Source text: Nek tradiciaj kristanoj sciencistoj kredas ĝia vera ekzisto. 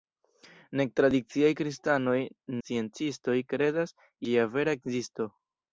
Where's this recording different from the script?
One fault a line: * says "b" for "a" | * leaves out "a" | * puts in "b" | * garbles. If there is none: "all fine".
all fine